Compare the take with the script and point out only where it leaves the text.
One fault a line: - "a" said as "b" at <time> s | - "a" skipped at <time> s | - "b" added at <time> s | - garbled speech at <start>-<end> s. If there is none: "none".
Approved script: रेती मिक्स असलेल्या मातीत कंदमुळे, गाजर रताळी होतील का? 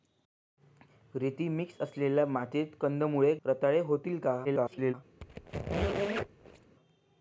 - "गाजर" skipped at 3.3 s
- garbled speech at 4.4-4.9 s